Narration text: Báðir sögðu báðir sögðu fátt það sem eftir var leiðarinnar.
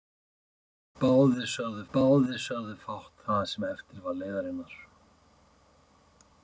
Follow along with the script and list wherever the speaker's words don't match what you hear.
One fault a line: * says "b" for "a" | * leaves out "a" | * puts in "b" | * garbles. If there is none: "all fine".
all fine